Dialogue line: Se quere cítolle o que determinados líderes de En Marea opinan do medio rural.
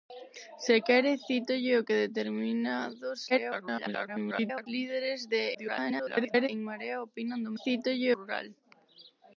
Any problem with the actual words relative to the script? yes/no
yes